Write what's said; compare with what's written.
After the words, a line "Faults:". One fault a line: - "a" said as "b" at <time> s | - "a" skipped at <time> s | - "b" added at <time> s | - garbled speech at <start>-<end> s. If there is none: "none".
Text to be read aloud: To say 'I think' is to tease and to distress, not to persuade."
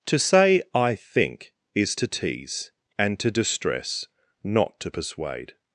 To say 'I think' is to tease and to distress, not to persuade."
Faults:
none